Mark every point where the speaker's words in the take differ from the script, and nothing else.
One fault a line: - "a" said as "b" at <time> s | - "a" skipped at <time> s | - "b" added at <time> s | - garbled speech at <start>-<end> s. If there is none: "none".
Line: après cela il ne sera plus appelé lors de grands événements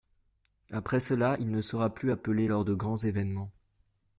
none